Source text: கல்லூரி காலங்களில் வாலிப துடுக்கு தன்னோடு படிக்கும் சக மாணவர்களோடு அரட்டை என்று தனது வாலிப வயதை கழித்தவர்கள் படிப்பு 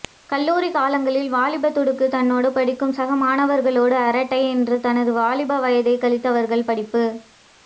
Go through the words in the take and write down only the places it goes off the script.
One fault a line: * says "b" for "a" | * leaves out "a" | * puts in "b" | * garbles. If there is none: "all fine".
all fine